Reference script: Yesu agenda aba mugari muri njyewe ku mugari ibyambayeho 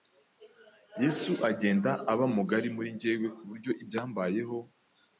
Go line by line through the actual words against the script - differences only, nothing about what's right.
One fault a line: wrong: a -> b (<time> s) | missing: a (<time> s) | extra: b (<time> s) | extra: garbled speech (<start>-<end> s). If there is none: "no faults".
wrong: mugari -> buryo (3.5 s)